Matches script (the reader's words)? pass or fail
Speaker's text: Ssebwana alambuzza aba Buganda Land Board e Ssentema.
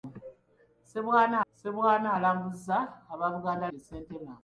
fail